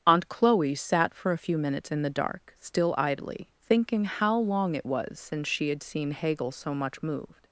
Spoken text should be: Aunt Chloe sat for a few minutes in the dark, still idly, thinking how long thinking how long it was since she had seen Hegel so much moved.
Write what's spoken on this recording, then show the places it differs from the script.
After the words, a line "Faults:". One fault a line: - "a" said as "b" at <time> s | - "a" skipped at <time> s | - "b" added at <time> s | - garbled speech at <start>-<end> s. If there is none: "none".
Aunt Chloe sat for a few minutes in the dark, still idly, thinking how long it was since she had seen Hegel so much moved.
Faults:
- "thinking how long" skipped at 4.8 s